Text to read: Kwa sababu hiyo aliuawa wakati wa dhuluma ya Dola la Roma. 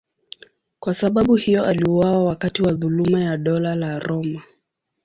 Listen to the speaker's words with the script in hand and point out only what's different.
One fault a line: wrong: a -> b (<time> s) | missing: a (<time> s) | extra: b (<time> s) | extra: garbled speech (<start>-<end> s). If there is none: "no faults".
no faults